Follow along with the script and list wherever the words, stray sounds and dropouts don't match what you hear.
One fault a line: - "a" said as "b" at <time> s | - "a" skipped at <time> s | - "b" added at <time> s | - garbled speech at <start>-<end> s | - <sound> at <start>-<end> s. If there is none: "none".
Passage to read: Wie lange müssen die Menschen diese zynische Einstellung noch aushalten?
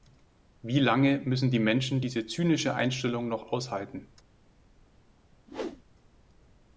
- whoosh at 5.5-5.8 s